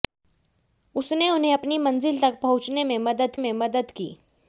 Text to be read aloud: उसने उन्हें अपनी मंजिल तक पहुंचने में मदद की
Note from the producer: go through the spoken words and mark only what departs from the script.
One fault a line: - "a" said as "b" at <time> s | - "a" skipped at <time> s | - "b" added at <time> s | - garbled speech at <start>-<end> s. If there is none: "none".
- "में मदद" added at 3.4 s